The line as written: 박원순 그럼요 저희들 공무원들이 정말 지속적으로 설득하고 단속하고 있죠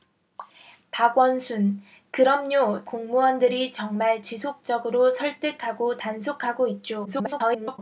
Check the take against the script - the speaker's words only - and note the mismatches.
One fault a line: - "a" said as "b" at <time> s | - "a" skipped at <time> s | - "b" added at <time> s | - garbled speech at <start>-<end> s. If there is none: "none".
- "저희들" skipped at 2.9 s
- garbled speech at 7.0-7.8 s